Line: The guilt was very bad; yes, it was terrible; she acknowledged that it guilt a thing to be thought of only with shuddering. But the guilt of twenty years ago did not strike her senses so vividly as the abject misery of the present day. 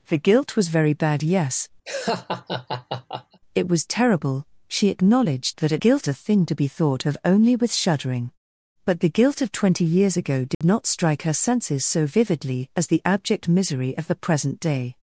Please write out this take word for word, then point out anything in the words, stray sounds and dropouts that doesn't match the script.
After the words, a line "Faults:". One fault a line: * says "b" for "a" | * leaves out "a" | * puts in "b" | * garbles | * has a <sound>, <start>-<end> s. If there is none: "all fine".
The guilt was very bad; yes, it was terrible; she acknowledged that it guilt a thing to be thought of only with shuddering. But the guilt of twenty years ago did not strike her senses so vividly as the abject misery of the present day.
Faults:
* has a laugh, 1.9-3.4 s
* has a dropout, 10.5-10.6 s